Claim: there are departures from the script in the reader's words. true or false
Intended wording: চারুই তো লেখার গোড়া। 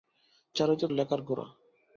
false